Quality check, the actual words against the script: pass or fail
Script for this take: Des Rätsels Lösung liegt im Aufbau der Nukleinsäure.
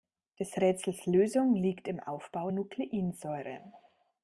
fail